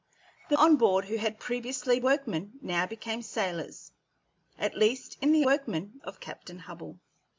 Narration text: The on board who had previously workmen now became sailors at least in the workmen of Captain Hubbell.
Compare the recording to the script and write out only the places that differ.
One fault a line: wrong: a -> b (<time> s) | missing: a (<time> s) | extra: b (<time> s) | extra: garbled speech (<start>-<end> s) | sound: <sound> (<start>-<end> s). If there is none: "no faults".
no faults